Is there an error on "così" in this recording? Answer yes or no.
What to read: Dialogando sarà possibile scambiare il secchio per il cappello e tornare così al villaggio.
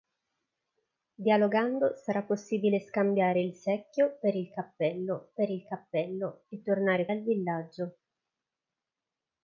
yes